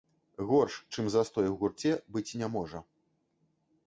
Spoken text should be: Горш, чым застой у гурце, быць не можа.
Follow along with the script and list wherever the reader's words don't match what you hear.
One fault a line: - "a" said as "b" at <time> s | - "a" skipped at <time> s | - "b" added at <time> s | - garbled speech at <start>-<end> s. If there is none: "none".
none